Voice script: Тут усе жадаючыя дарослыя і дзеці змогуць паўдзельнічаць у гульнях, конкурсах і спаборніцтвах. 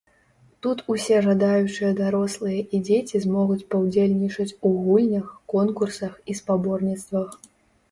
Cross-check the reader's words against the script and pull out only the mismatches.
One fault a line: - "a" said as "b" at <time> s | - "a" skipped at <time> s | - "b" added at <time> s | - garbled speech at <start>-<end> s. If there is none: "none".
none